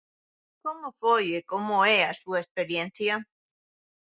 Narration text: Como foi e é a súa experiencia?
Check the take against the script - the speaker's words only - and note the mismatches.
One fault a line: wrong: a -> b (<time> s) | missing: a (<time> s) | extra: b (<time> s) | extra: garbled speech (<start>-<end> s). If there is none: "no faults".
extra: como (1.5 s)